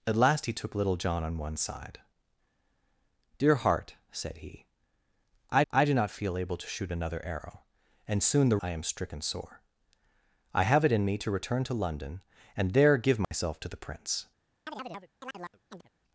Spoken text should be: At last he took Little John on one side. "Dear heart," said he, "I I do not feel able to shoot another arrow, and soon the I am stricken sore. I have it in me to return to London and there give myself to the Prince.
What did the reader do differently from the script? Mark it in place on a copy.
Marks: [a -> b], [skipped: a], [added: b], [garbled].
At last he took Little John on one side. "Dear heart," said he, "I I do not feel able to shoot another arrow, and soon the I am stricken sore. I have it in me to return to London and there give myself to the Prince.